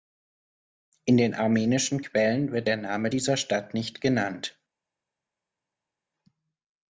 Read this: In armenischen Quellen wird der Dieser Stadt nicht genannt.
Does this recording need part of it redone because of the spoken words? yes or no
yes